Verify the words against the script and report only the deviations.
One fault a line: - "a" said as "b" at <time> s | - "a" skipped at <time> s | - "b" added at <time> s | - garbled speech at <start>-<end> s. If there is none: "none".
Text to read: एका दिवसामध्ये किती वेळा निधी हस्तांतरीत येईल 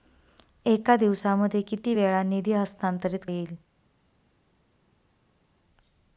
none